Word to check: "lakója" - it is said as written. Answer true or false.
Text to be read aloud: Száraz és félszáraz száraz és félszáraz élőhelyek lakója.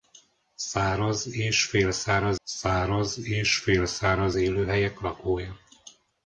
true